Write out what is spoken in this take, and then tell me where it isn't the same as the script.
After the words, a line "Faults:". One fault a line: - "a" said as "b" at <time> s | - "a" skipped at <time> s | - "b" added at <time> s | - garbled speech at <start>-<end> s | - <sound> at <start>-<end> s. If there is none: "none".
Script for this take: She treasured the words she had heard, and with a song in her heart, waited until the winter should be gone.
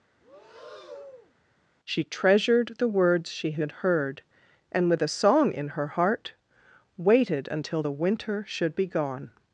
She treasured the words she had heard, and with a song in her heart, waited until the winter should be gone.
Faults:
- breath at 0.2-1.3 s